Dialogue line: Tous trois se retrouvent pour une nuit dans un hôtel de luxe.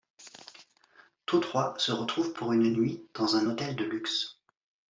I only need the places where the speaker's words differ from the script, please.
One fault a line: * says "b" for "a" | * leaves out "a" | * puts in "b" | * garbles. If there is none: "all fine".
all fine